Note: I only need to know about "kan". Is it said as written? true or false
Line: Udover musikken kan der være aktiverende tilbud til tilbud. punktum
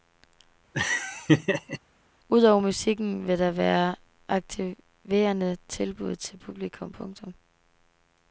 false